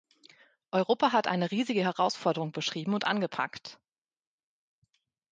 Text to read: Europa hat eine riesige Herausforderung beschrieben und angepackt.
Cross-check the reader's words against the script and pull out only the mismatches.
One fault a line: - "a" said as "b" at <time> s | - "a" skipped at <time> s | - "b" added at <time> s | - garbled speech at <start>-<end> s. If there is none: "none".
none